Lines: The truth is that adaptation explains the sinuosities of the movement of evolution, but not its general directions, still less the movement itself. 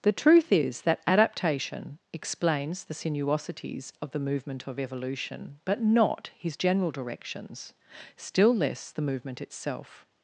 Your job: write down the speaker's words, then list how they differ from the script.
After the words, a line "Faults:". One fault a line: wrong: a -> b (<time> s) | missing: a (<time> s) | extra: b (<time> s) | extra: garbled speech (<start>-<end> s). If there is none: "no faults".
The truth is that adaptation explains the sinuosities of the movement of evolution, but not his general directions, still less the movement itself.
Faults:
wrong: its -> his (6.4 s)